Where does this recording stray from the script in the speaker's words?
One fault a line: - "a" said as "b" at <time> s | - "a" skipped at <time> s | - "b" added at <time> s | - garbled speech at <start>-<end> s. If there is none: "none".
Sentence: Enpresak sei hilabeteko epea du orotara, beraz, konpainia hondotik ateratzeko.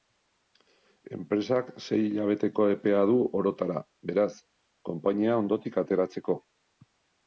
none